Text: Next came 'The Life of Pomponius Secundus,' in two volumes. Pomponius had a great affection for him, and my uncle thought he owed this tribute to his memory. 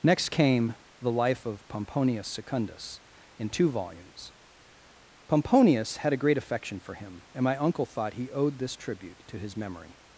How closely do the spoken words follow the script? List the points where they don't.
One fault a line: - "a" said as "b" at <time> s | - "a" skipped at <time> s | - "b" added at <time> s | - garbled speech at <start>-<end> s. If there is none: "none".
none